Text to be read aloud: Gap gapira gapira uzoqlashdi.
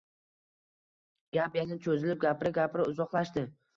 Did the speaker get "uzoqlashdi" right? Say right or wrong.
right